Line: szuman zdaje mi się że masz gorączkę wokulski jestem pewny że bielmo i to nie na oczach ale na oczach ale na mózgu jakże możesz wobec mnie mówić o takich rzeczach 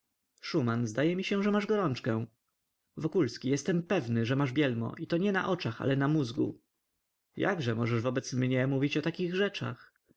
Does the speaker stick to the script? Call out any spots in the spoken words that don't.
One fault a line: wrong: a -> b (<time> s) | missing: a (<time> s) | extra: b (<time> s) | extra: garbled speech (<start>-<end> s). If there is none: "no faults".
extra: masz (4.3 s)
missing: oczach ale na (6.1 s)